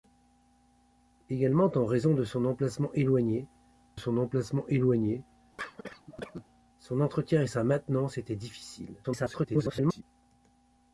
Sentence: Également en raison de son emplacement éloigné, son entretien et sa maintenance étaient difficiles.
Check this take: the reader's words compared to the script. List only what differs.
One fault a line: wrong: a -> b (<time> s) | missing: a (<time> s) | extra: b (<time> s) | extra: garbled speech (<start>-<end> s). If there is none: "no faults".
extra: emplacement éloigné son (4.2 s)
extra: garbled speech (9.0-10.0 s)